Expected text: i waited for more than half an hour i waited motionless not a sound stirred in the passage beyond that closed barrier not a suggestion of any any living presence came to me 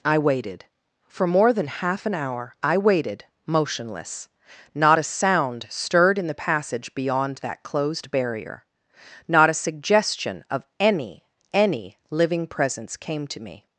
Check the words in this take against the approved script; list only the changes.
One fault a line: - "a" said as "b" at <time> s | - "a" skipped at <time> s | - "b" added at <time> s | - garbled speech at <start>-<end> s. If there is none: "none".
none